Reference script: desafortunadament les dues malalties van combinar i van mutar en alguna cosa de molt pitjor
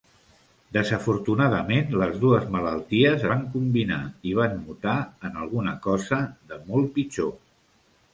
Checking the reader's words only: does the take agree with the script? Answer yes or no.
yes